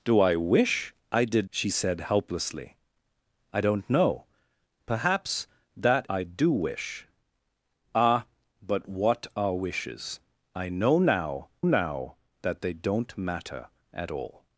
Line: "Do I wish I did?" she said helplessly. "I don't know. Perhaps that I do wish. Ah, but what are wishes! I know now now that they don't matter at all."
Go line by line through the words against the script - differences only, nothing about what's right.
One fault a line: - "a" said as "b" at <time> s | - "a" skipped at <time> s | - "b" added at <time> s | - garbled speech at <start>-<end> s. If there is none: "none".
none